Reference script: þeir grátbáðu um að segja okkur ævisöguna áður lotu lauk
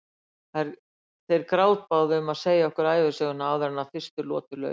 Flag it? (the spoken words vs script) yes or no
yes